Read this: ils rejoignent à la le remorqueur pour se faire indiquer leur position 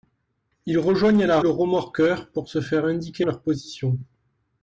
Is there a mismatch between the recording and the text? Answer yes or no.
no